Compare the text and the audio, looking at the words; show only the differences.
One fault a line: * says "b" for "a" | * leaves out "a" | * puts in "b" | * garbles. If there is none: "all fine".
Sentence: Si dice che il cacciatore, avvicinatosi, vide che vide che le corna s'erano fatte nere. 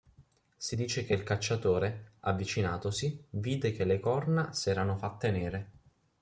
* leaves out "vide che"